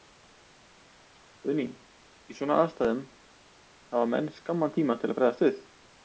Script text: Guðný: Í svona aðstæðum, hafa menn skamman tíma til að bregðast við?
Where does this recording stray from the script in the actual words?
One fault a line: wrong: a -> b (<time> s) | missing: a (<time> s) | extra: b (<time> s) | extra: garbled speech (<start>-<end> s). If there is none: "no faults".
no faults